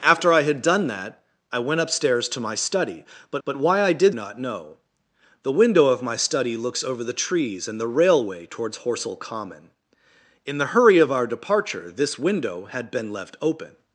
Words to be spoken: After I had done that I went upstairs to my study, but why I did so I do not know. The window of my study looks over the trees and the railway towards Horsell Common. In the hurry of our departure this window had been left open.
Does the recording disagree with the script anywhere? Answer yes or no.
yes